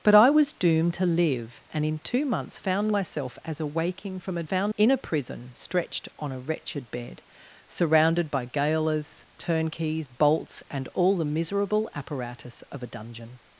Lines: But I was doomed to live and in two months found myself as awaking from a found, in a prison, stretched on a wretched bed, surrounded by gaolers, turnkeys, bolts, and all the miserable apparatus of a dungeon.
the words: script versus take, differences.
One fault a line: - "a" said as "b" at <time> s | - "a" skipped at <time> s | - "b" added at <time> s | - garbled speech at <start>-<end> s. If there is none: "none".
none